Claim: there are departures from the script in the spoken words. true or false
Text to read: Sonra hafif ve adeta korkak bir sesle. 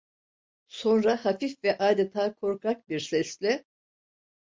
false